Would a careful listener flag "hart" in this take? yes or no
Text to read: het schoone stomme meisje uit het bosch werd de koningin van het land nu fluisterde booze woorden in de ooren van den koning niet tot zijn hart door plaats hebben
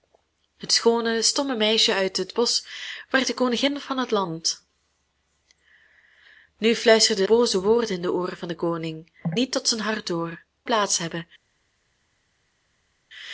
no